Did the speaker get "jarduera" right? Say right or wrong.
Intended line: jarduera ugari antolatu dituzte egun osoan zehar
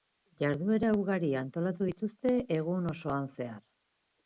right